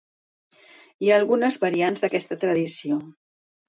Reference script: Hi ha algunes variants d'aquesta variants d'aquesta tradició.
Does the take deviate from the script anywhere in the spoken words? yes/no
yes